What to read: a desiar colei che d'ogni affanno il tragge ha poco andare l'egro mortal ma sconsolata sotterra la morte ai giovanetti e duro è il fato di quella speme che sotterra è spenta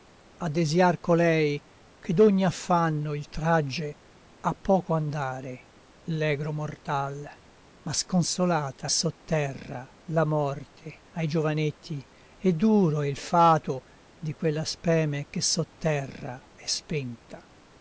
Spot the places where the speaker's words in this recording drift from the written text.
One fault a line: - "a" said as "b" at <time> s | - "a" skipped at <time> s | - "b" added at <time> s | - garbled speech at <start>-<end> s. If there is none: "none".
none